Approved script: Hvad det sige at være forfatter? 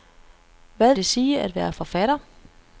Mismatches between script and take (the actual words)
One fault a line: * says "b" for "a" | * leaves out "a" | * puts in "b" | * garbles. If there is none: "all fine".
all fine